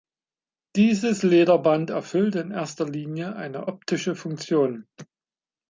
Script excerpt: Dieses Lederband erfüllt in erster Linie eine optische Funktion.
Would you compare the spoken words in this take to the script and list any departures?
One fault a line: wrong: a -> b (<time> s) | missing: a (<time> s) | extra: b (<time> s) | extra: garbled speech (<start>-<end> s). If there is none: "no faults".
no faults